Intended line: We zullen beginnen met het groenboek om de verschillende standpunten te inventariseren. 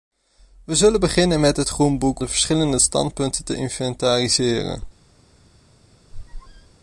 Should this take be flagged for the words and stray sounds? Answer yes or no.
yes